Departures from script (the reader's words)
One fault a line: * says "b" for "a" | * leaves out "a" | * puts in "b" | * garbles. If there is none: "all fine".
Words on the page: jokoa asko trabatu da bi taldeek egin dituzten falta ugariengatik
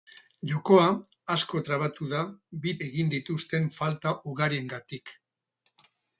* leaves out "taldeek"